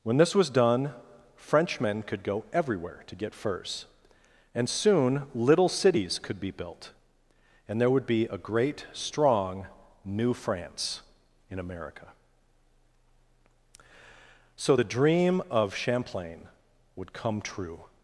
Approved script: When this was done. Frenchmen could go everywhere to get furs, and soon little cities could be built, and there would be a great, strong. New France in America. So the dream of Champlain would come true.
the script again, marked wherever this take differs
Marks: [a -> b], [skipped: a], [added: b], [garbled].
When this was done. Frenchmen could go everywhere to get furs, and soon little cities could be built, and there would be a great, strong. New France in America. So the dream of Champlain would come true.